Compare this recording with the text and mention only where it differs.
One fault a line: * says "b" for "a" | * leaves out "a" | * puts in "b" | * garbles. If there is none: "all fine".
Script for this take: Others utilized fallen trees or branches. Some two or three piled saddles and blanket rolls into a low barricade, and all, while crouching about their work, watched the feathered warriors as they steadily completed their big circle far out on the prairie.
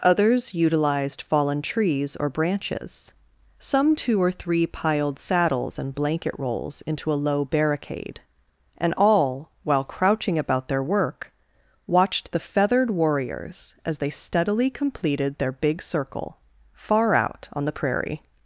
all fine